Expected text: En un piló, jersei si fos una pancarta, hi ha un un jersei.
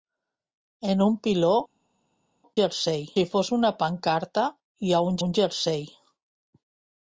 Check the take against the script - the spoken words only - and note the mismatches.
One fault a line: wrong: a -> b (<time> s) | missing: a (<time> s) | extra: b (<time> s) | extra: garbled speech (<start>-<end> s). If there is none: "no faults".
no faults